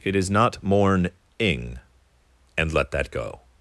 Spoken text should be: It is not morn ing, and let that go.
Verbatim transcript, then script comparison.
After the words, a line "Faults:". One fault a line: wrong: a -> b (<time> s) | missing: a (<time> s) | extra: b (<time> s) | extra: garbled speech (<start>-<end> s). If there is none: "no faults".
It is not morn ing, and let that go.
Faults:
no faults